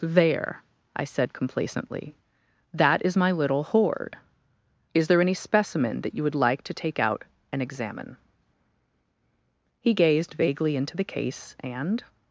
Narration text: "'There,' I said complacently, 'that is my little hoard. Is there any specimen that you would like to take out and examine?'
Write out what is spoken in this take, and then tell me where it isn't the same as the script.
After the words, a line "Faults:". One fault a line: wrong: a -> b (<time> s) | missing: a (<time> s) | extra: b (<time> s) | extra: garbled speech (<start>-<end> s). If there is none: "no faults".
"'There,' I said complacently, 'that is my little hoard. Is there any specimen that you would like to take out and examine?' "He gazed vaguely into the case and
Faults:
extra: He gazed vaguely into the case and (9.8 s)